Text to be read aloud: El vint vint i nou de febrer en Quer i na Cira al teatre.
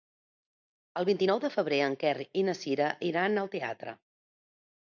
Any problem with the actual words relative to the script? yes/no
yes